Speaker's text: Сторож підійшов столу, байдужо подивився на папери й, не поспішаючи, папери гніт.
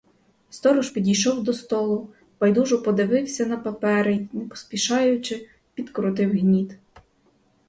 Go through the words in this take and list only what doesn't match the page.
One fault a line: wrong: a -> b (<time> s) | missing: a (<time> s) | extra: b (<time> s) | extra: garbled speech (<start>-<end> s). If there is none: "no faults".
extra: до (1.4 s)
wrong: папери -> підкрутив (5.7 s)